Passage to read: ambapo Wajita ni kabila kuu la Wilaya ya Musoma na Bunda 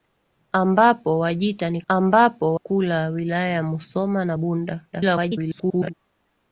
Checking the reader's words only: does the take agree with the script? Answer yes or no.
no